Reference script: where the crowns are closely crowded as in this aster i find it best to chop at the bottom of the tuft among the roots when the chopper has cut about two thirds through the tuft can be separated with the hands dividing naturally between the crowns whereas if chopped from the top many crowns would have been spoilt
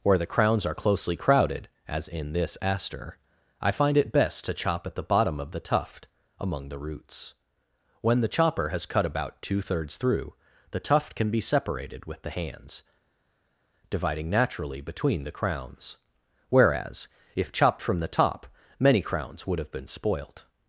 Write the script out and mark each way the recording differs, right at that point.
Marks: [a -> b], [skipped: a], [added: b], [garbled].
where the crowns are closely crowded as in this aster i find it best to chop at the bottom of the tuft among the roots when the chopper has cut about two thirds through the tuft can be separated with the hands dividing naturally between the crowns whereas if chopped from the top many crowns would have been spoilt